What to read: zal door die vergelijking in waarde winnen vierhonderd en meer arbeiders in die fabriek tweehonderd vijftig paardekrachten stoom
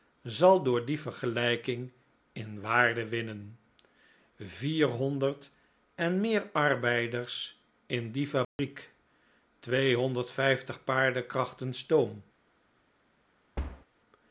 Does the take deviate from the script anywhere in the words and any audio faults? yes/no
yes